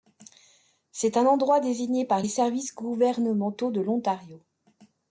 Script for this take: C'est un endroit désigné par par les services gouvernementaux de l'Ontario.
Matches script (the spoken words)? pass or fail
fail